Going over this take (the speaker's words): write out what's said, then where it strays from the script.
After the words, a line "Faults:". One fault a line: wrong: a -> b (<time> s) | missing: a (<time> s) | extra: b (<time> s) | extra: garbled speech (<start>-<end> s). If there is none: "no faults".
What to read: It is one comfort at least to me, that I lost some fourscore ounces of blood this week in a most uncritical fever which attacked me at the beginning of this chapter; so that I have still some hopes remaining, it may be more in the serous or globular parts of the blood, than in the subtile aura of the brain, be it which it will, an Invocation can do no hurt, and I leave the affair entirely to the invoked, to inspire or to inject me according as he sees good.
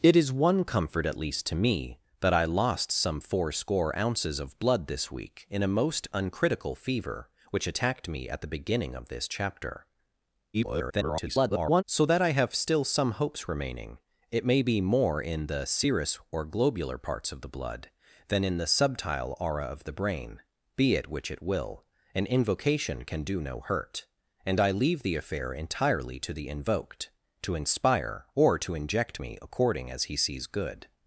It is one comfort at least to me, that I lost some fourscore ounces of blood this week in a most uncritical fever which attacked me at the beginning of this chapter; [garbled] so that I have still some hopes remaining, it may be more in the serous or globular parts of the blood, than in the subtile aura of the brain, be it which it will, an Invocation can do no hurt, and I leave the affair entirely to the invoked, to inspire or to inject me according as he sees good.
Faults:
extra: garbled speech (10.5-11.8 s)